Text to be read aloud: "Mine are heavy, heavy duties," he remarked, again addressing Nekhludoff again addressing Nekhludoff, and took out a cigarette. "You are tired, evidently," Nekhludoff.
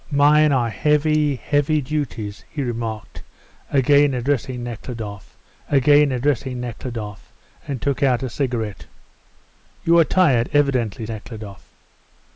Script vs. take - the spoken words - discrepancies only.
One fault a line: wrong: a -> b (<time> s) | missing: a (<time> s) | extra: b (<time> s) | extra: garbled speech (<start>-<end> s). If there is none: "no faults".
no faults